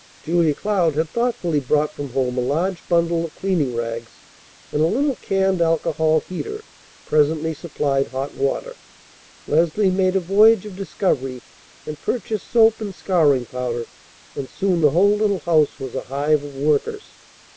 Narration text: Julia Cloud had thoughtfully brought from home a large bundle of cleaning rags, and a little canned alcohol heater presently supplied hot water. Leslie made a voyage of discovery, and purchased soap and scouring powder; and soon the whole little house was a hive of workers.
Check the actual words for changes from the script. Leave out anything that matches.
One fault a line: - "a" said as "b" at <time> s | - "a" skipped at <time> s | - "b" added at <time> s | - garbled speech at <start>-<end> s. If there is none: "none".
none